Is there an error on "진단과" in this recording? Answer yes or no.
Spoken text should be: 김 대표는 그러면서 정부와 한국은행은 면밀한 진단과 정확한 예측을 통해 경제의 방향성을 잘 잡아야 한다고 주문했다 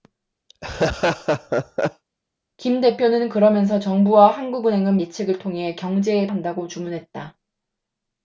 yes